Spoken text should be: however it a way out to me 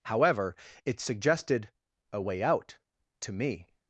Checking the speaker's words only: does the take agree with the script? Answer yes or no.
no